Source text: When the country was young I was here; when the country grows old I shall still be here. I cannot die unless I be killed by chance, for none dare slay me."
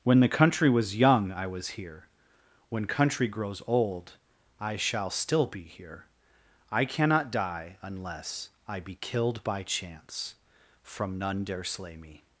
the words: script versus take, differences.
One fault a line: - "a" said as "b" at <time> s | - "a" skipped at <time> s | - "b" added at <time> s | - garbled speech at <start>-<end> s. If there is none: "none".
- "the" skipped at 2.9 s
- "for" said as "from" at 10.8 s